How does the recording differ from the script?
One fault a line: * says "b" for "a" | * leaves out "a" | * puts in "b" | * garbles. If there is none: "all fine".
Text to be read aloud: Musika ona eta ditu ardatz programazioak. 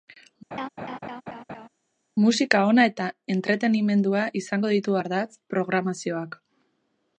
* puts in "entretenimendua izango"